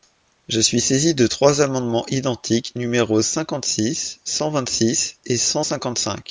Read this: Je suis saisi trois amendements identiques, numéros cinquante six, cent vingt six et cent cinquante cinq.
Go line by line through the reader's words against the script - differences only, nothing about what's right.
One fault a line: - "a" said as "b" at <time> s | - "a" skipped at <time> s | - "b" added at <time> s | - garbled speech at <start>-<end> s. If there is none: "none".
- "de" added at 1.1 s